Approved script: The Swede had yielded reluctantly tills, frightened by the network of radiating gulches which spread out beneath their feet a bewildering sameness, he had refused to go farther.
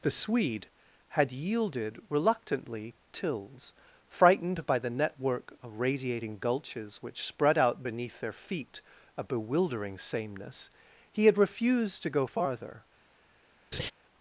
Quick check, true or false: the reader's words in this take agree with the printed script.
true